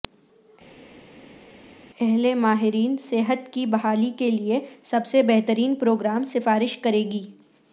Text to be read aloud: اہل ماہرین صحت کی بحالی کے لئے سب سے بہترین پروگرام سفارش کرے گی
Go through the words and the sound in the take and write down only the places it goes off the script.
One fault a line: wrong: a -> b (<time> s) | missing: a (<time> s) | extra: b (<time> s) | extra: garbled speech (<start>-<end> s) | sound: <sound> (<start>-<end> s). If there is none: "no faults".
no faults